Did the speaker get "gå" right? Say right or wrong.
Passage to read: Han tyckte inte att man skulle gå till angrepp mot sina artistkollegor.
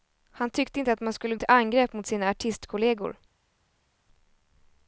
wrong